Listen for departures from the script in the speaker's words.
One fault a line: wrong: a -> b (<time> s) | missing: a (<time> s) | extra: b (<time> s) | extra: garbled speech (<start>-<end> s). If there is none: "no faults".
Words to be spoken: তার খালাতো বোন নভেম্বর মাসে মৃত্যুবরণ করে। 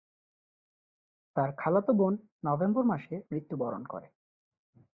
no faults